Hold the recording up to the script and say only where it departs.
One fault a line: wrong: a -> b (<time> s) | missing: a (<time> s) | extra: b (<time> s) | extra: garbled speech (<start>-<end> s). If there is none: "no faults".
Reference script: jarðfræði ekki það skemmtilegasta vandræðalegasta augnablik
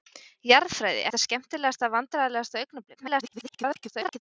missing: ekki (1.0 s)
extra: garbled speech (3.0-4.2 s)